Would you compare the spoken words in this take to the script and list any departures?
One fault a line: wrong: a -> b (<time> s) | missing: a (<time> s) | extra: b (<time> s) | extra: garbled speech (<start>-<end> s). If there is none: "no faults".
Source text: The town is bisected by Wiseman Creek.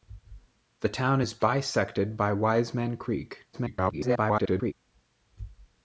extra: garbled speech (3.5-4.7 s)